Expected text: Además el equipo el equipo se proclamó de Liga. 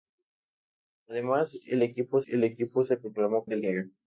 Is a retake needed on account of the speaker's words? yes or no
no